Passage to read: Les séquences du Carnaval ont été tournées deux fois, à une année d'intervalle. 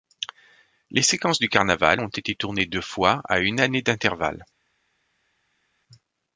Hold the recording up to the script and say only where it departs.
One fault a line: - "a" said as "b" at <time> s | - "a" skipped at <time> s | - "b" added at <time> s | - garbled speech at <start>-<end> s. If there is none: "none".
none